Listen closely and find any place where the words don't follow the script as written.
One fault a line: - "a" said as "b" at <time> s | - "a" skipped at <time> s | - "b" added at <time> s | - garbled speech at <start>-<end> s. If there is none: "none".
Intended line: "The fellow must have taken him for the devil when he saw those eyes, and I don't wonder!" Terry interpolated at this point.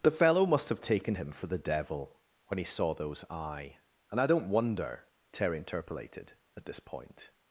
- "eyes" said as "eye" at 3.3 s